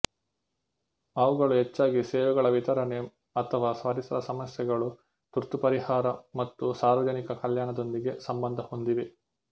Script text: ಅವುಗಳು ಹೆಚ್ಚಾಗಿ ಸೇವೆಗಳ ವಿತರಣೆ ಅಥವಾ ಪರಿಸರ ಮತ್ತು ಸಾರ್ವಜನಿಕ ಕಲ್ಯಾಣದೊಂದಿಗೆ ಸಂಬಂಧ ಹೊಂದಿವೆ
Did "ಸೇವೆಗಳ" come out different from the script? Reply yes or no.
no